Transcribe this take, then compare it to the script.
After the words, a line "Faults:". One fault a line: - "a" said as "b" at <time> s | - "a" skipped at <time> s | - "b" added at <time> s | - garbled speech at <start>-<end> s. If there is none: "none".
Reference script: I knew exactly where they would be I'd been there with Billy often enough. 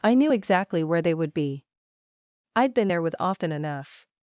I knew exactly where they would be I'd been there with often enough.
Faults:
- "Billy" skipped at 3.2 s